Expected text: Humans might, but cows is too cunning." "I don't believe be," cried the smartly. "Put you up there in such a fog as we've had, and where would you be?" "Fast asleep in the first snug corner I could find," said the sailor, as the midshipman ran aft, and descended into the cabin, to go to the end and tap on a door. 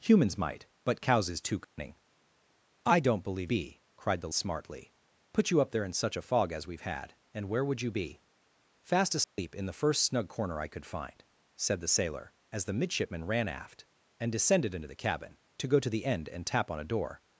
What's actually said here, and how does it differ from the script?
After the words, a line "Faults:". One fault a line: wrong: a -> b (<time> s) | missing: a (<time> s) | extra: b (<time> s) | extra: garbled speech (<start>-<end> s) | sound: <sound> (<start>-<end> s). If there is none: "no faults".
Humans might, but cows is too cunning." "I don't believe be," cried the smartly. "Put you up there in such a fog as we've had, and where would you be?" "Fast asleep in the first snug corner I could find," said the sailor, as the midshipman ran aft, and descended into the cabin, to go to the end and tap on a door.
Faults:
sound: dropout (1.6-1.8 s)
sound: dropout (9.2-9.4 s)